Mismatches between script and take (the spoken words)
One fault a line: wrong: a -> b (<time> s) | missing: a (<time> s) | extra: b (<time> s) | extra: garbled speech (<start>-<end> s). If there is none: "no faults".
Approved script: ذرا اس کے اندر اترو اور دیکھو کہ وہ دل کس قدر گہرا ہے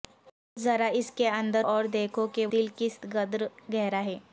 missing: اترو (1.6 s)
missing: وہ (2.4 s)